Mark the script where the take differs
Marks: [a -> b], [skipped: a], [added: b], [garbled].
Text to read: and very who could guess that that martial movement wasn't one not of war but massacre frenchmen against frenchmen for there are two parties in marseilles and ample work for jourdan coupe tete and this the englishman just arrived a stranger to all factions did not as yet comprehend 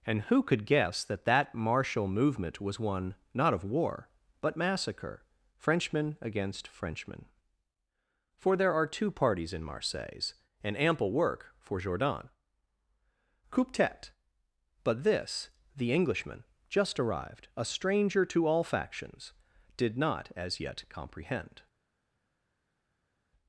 and [skipped: very] who could guess that that martial movement [wasn't -> was] one not of war but massacre frenchmen against frenchmen for there are two parties in marseilles and ample work for jourdan coupe tete [and -> but] this the englishman just arrived a stranger to all factions did not as yet comprehend